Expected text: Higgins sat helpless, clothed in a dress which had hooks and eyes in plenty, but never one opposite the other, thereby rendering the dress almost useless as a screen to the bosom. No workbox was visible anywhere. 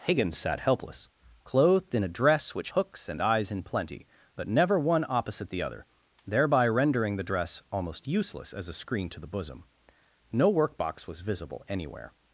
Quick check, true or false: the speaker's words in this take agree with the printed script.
false